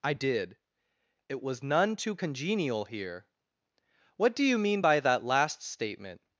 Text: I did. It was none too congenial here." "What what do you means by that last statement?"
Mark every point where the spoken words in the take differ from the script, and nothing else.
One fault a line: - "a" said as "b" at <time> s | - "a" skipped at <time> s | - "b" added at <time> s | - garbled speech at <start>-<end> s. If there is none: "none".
- "what" skipped at 4.3 s
- "means" said as "mean" at 4.6 s